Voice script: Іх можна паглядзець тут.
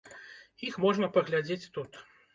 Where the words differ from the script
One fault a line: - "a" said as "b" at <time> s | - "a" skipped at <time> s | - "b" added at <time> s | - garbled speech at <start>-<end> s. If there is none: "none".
none